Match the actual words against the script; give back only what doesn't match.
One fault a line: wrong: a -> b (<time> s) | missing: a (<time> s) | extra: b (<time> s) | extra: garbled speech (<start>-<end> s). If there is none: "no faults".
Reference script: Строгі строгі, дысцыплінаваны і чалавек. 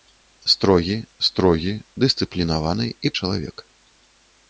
no faults